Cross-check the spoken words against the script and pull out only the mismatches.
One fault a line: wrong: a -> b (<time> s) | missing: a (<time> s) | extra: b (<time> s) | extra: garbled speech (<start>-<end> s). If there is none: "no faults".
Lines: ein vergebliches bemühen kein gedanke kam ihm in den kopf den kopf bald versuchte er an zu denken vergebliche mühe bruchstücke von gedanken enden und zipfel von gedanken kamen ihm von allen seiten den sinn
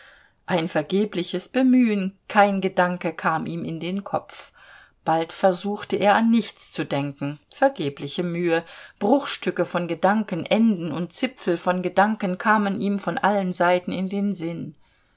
missing: den kopf (4.5 s)
extra: nichts (6.3 s)
extra: in (13.9 s)